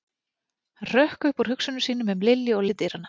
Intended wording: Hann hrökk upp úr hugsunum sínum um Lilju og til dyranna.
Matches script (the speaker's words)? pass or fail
pass